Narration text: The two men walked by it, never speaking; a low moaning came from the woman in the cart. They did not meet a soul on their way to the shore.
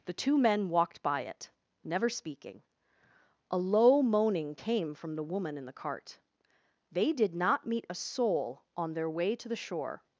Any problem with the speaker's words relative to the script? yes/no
no